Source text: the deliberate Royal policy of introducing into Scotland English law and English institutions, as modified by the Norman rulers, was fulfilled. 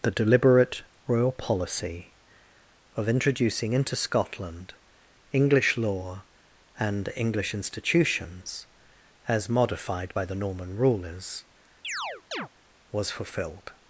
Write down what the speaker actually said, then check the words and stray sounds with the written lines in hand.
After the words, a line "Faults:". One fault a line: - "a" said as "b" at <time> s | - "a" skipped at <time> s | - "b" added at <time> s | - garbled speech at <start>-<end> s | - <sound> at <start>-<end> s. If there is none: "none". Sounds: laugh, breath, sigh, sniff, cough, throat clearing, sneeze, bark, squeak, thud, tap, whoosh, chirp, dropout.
the deliberate Royal policy of introducing into Scotland English law and English institutions, as modified by the Norman rulers, was fulfilled.
Faults:
- chirp at 11.8-12.5 s